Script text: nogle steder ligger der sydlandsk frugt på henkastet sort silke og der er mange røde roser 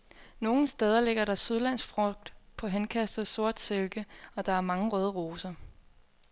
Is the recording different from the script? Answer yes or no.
no